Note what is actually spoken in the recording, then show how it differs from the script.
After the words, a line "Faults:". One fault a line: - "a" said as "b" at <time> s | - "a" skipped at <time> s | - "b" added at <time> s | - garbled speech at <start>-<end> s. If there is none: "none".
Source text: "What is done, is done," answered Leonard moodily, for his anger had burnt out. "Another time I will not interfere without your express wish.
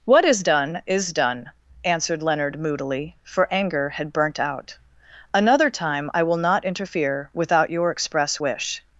"What is done, is done," answered Leonard moodily, for anger had burnt out. "Another time I will not interfere without your express wish.
Faults:
- "his" skipped at 3.5 s